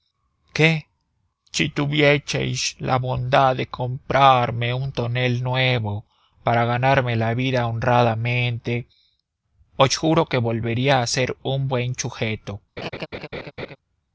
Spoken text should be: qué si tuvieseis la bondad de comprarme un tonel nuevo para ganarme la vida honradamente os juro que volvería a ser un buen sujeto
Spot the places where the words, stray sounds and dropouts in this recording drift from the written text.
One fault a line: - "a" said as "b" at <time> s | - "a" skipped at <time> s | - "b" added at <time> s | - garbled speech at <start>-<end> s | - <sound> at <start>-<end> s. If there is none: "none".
- laugh at 12.8-13.8 s